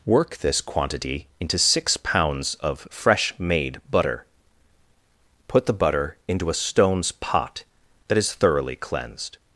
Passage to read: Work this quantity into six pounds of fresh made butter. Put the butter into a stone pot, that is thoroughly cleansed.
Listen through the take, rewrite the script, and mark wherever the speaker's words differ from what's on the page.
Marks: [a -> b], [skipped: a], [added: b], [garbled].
Work this quantity into six pounds of fresh made butter. Put the butter into a [stone -> stones] pot, that is thoroughly cleansed.